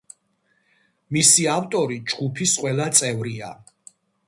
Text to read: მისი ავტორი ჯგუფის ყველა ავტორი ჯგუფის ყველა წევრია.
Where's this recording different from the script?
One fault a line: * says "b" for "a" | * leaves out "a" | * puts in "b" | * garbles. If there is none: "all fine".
* leaves out "ავტორი ჯგუფის ყველა"